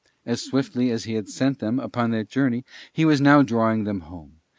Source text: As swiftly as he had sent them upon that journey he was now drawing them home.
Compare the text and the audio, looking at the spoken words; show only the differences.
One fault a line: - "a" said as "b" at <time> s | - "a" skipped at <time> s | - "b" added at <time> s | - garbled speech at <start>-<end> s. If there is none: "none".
none